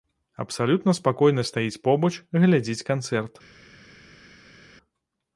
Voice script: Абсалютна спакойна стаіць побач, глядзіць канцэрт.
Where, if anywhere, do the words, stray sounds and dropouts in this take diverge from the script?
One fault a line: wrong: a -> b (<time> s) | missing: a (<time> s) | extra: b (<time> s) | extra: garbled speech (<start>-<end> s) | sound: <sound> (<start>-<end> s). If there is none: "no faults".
no faults